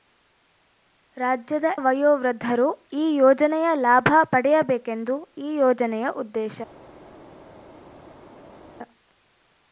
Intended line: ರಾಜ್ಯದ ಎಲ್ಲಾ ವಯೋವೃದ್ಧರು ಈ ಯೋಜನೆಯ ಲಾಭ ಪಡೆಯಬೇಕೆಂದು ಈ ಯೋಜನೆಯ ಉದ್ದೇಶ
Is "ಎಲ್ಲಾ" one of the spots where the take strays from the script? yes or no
yes